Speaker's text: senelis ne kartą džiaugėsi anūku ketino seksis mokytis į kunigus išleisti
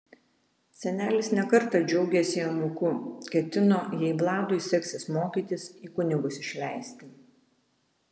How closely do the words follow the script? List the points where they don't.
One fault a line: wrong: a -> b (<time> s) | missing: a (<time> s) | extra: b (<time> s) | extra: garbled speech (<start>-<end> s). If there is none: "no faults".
extra: jei vladui (4.0 s)